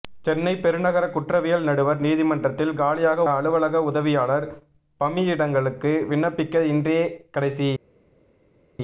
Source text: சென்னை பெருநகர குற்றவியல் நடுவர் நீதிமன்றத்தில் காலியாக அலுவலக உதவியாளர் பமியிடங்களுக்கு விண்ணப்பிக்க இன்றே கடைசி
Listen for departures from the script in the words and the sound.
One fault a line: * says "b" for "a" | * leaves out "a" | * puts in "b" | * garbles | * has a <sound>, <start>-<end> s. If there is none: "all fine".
all fine